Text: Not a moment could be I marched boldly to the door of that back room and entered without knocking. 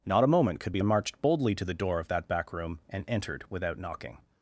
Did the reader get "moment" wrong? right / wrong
right